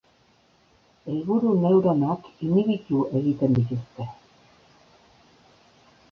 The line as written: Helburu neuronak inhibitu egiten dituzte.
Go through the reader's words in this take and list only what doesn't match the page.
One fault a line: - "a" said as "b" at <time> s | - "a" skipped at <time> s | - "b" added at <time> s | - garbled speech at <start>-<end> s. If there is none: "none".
none